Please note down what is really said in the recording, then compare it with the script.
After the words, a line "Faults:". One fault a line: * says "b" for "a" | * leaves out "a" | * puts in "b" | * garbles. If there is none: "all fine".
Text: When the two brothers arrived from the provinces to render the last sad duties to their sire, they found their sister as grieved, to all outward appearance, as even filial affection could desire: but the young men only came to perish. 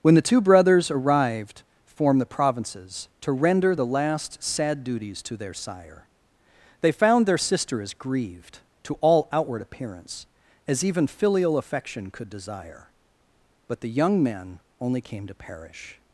When the two brothers arrived form the provinces to render the last sad duties to their sire, they found their sister as grieved, to all outward appearance, as even filial affection could desire: but the young men only came to perish.
Faults:
* says "form" for "from"